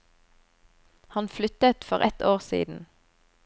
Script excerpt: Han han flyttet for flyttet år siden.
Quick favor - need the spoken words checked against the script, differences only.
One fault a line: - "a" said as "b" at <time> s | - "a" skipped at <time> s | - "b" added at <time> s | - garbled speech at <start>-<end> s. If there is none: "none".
- "han" skipped at 1.3 s
- "flyttet" said as "ett" at 2.0 s